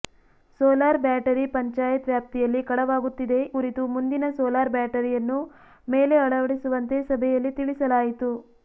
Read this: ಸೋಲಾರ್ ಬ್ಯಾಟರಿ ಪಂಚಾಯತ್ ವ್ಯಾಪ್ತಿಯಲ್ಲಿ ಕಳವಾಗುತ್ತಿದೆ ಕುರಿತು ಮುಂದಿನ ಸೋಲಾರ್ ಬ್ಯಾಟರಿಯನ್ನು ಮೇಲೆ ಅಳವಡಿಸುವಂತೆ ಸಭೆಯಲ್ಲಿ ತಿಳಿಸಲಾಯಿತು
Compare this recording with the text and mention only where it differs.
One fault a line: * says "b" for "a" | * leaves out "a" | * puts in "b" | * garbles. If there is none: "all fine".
all fine